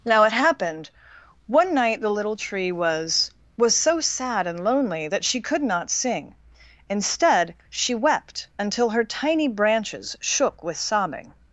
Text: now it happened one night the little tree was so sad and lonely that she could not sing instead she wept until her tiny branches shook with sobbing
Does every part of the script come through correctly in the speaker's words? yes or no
no